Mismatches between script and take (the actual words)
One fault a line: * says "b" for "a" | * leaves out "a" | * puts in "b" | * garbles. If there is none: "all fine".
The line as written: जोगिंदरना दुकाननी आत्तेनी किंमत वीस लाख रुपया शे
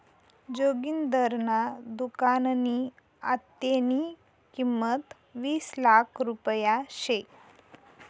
all fine